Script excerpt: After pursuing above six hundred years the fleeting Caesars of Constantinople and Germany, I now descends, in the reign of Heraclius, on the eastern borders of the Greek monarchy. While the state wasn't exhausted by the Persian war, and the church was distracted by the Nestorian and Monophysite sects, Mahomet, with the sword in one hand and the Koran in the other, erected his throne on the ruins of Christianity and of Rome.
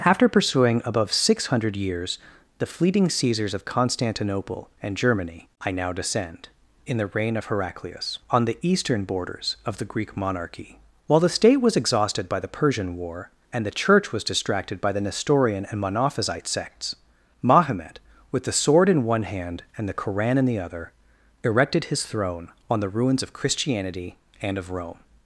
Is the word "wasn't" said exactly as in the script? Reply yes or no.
no